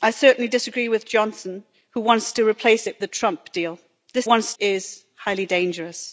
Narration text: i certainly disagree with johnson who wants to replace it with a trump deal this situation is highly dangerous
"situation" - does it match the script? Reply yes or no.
no